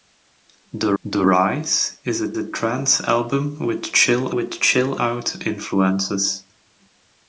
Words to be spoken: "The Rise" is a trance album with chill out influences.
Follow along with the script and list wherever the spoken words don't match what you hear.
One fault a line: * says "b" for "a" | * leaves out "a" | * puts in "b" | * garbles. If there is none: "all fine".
* puts in "the"
* puts in "a"
* puts in "with chill"